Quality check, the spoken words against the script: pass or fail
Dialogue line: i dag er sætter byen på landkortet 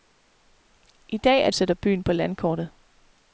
pass